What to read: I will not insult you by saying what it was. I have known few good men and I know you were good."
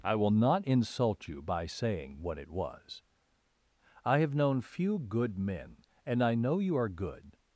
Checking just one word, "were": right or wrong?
wrong